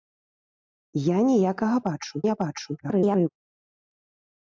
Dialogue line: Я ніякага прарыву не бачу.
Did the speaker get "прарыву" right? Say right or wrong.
wrong